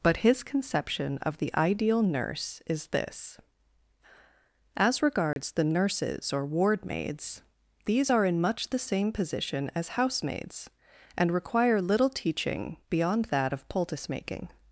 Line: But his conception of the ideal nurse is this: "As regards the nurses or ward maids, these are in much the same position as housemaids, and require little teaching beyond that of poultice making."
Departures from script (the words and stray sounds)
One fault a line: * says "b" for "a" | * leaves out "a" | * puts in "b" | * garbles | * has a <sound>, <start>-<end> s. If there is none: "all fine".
* has a dropout, 5.3-5.4 s